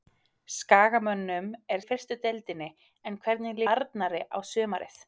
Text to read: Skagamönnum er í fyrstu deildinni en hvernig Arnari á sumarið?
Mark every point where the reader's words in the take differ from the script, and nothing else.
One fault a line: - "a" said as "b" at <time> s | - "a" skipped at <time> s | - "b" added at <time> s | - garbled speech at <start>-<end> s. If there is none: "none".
none